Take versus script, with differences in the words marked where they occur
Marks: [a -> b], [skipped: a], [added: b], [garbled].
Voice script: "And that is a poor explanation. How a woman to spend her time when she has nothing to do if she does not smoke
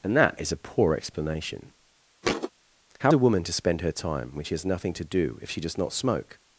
"And that is a poor explanation. How a woman to spend her time when she has nothing to do if she does not smoke